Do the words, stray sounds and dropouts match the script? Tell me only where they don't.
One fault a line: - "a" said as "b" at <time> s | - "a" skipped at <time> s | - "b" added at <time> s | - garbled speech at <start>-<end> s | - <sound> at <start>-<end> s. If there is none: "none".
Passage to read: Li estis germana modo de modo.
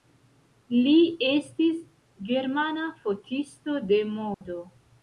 - "modo" said as "fotisto" at 3.0 s
- dropout at 4.3-4.4 s